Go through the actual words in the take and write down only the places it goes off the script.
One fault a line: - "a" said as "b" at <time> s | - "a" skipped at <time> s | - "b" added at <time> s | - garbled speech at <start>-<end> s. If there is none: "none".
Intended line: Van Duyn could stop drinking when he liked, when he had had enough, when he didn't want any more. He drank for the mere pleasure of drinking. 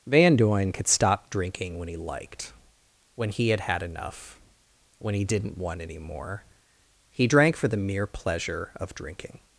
none